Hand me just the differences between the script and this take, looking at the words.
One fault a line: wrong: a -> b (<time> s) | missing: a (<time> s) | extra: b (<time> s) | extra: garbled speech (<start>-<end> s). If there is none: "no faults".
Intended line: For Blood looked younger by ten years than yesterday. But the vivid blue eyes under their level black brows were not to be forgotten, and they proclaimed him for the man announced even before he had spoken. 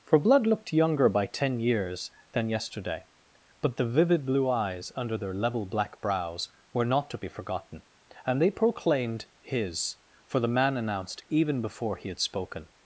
wrong: him -> his (9.4 s)